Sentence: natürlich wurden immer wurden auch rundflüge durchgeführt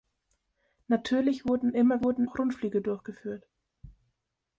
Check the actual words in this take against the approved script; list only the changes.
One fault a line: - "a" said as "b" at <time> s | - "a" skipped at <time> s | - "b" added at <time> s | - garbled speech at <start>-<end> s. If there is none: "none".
none